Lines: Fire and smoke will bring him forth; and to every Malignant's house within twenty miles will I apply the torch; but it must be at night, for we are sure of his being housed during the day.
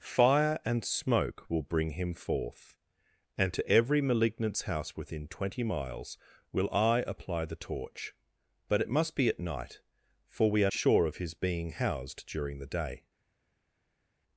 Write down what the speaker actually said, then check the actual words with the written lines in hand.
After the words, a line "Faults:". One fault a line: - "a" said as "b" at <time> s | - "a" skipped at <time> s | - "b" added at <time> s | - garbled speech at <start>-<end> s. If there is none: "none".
Fire and smoke will bring him forth; and to every Malignant's house within twenty miles will I apply the torch; but it must be at night, for we are sure of his being housed during the day.
Faults:
none